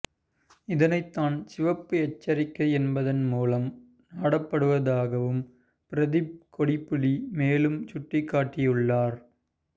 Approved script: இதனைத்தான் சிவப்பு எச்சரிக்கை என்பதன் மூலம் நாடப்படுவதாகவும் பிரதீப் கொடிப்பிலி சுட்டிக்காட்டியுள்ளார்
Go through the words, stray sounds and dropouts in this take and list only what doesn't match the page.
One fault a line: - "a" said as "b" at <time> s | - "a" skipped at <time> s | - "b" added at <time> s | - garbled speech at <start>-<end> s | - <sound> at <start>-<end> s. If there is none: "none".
- "மேலும்" added at 7.3 s